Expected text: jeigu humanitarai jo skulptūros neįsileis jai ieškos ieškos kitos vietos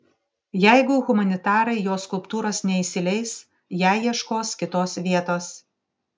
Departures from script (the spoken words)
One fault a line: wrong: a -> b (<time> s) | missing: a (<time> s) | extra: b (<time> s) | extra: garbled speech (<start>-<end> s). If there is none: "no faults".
missing: ieškos (4.5 s)